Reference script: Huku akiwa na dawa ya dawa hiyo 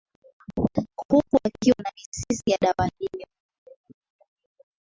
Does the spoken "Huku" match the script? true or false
true